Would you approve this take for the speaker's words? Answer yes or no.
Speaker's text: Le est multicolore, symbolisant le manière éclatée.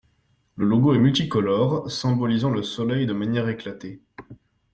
no